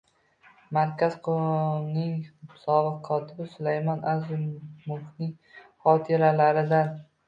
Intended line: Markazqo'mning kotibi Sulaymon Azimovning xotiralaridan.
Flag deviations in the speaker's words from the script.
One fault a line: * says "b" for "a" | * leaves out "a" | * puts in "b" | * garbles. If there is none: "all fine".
* puts in "sobiq"